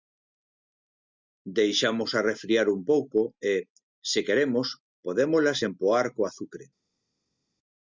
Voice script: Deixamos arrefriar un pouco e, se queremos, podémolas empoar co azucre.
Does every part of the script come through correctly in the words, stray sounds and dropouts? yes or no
yes